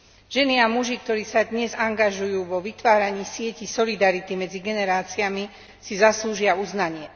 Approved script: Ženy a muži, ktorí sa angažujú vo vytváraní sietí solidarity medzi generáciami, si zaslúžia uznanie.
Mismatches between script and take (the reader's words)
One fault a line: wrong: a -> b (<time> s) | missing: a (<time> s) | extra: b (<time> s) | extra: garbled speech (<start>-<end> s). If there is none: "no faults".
extra: dnes (1.4 s)